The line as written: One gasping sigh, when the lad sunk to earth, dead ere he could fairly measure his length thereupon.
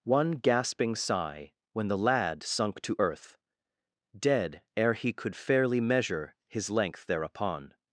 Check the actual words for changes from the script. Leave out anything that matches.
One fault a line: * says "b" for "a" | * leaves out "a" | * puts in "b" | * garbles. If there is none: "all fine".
all fine